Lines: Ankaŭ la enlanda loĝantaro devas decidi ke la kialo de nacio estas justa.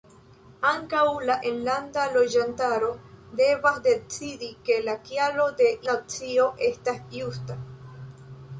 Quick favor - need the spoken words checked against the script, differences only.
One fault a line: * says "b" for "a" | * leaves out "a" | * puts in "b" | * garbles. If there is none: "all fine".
all fine